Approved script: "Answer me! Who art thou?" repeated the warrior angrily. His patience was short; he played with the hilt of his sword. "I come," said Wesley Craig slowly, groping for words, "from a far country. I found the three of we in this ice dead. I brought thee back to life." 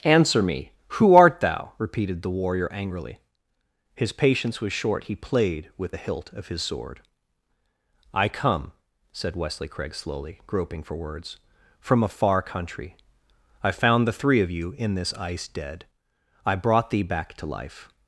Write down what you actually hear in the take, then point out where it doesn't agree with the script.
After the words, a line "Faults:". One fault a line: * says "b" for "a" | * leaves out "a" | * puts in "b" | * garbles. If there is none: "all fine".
"Answer me! Who art thou?" repeated the warrior angrily. His patience was short; he played with the hilt of his sword. "I come," said Wesley Craig slowly, groping for words, "from a far country. I found the three of you in this ice dead. I brought thee back to life."
Faults:
* says "you" for "we"